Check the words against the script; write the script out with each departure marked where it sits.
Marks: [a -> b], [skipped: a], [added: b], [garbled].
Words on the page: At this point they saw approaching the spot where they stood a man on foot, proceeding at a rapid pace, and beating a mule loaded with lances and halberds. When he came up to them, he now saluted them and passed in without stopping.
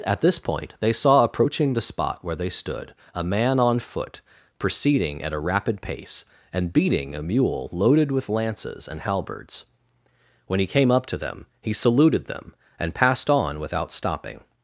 At this point they saw approaching the spot where they stood a man on foot, proceeding at a rapid pace, and beating a mule loaded with lances and halberds. When he came up to them, he [skipped: now] saluted them and passed [in -> on] without stopping.